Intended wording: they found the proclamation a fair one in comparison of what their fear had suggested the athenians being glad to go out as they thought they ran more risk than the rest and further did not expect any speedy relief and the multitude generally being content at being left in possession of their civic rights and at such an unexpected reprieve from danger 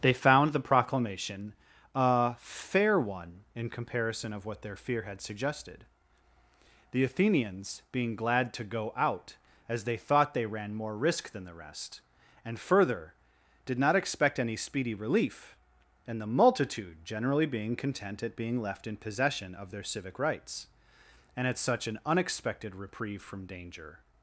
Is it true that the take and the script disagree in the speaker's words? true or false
false